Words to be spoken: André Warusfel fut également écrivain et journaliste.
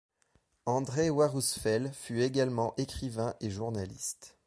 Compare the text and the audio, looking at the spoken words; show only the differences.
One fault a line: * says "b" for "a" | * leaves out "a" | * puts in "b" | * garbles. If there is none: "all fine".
all fine